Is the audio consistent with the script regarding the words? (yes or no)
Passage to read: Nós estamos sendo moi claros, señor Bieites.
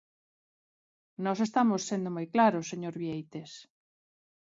yes